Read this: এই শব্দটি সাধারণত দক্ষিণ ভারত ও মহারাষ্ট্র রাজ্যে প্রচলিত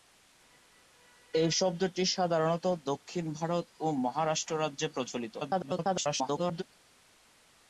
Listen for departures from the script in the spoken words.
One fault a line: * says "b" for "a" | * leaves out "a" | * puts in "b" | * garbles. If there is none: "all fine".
* garbles